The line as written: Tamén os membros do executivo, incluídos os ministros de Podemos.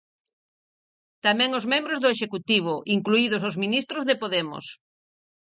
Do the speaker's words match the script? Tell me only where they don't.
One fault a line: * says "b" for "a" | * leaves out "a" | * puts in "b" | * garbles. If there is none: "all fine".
all fine